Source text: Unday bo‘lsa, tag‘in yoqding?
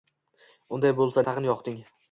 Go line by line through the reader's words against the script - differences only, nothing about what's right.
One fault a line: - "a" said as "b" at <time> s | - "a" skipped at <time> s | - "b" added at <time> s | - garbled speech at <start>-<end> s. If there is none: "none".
none